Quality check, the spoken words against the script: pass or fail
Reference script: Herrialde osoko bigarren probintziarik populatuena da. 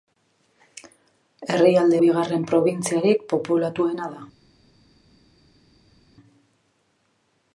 fail